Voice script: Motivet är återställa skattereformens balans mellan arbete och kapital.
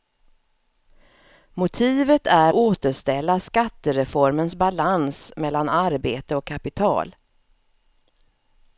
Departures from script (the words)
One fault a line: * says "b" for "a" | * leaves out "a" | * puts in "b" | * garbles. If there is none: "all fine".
all fine